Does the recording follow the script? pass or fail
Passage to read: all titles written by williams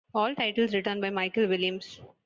fail